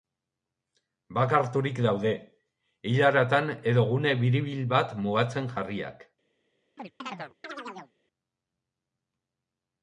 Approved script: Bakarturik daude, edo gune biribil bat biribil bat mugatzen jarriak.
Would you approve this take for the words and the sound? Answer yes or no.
no